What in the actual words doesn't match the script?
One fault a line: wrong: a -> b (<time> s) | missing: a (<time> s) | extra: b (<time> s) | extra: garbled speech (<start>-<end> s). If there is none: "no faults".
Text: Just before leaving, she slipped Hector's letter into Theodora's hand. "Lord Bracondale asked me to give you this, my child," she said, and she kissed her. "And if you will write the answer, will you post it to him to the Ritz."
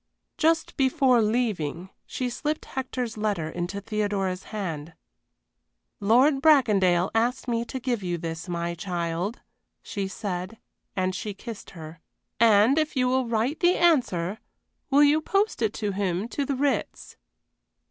no faults